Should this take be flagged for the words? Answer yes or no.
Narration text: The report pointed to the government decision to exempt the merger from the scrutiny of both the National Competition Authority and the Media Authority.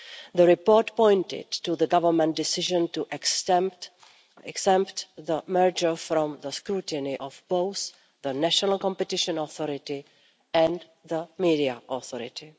no